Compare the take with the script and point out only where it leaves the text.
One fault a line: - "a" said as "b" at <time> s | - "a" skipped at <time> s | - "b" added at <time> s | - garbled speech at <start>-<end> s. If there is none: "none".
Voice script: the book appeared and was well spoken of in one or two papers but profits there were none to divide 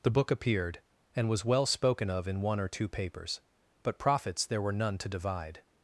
none